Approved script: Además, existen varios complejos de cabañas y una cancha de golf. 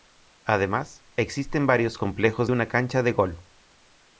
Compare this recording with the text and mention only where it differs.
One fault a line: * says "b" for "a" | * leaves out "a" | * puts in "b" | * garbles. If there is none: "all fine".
* leaves out "de cabañas y"